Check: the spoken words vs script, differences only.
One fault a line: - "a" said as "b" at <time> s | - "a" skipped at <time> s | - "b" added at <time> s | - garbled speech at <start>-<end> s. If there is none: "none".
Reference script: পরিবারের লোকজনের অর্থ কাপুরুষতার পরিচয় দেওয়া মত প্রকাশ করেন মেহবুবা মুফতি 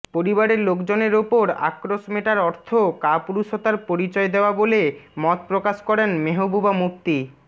- "ওপর আক্রোশ মেটার" added at 1.1 s
- "বলে" added at 4.5 s